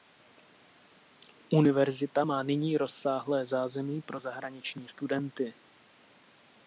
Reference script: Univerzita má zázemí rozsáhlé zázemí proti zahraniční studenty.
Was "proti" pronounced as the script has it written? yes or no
no